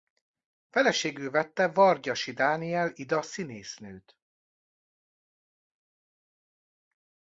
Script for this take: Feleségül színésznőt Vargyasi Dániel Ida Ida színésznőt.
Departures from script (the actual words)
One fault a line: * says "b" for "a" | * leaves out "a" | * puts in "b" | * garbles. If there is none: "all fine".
* says "vette" for "színésznőt"
* leaves out "Ida"